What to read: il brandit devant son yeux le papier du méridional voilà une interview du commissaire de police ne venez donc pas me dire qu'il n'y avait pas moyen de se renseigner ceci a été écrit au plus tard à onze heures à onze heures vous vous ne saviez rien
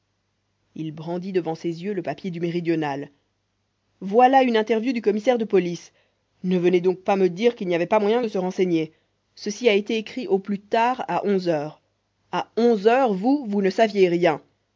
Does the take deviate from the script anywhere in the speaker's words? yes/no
yes